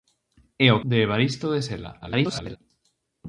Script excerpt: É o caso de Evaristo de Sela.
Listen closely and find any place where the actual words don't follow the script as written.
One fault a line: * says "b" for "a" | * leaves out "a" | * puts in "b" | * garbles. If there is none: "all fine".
* leaves out "caso"
* garbles